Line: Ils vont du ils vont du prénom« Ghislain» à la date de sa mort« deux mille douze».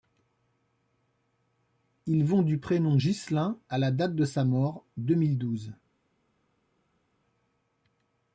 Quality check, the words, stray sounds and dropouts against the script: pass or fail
fail